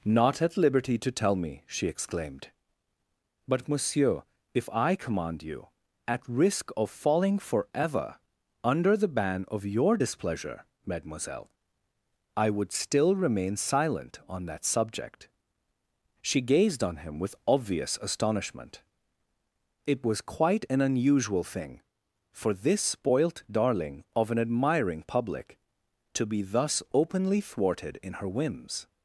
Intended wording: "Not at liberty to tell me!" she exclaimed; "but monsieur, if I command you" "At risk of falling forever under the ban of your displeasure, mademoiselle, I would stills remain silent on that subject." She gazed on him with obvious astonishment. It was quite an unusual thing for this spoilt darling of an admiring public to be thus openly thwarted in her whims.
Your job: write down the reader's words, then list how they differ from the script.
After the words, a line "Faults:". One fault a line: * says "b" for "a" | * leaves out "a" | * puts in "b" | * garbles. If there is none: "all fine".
"Not at liberty to tell me!" she exclaimed; "but monsieur, if I command you" "At risk of falling forever under the ban of your displeasure, mademoiselle, I would still remain silent on that subject." She gazed on him with obvious astonishment. It was quite an unusual thing for this spoilt darling of an admiring public to be thus openly thwarted in her whims.
Faults:
* says "still" for "stills"